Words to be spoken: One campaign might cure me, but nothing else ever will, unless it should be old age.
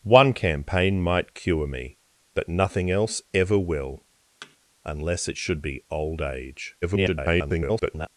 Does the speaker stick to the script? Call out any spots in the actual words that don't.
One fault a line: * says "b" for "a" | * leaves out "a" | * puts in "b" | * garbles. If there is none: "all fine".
* garbles